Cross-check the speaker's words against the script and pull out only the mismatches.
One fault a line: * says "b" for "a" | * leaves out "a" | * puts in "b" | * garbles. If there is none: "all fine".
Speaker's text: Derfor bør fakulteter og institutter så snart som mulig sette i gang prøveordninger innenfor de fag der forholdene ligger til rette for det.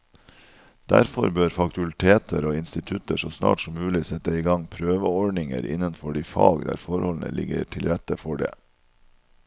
all fine